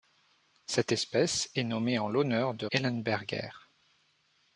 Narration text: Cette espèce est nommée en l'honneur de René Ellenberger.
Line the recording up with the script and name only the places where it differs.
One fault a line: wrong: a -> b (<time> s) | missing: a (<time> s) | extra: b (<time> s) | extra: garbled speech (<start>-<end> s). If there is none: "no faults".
missing: René (2.7 s)